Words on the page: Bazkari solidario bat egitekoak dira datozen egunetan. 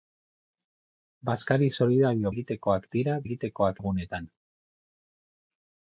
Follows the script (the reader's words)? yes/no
no